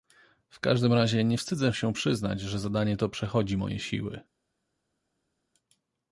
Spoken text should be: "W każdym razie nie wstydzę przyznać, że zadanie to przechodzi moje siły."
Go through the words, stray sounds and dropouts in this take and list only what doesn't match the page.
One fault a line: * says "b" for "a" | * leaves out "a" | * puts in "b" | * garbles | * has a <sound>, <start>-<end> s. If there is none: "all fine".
* puts in "się"